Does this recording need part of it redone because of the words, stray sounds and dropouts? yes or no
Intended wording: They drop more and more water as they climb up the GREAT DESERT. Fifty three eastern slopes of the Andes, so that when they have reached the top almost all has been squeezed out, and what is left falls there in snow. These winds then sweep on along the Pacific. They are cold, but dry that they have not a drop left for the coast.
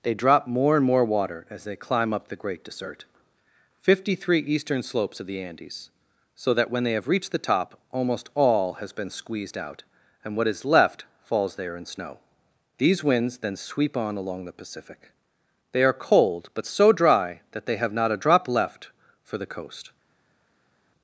yes